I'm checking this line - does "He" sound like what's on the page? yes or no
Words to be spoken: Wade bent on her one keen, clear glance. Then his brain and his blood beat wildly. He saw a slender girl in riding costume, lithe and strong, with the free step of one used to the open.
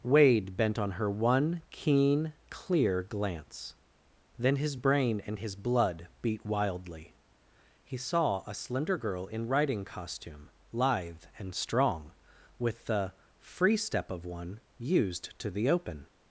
yes